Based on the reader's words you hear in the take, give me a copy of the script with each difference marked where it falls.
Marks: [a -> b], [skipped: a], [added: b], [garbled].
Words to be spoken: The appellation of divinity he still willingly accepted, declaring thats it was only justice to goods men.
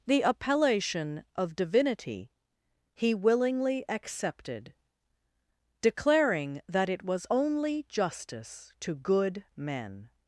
The appellation of divinity he [skipped: still] willingly accepted, declaring [thats -> that] it was only justice to [goods -> good] men.